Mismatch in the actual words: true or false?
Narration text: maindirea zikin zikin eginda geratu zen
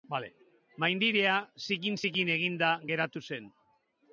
false